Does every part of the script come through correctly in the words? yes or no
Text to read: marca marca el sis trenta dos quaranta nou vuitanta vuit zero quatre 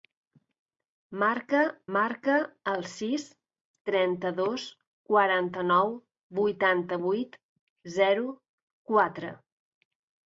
yes